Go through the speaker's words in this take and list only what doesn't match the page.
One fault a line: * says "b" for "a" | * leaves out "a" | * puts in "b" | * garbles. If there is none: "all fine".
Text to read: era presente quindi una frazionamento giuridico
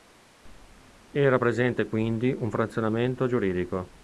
* says "un" for "una"